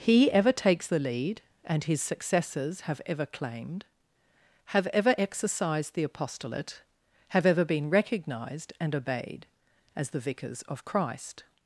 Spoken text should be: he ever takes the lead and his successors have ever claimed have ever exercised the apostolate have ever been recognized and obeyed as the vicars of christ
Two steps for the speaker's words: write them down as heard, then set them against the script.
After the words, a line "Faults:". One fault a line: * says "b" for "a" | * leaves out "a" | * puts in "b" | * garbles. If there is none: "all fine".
he ever takes the lead and his successors have ever claimed have ever exercised the apostolate have ever been recognized and obeyed as the vicars of christ
Faults:
all fine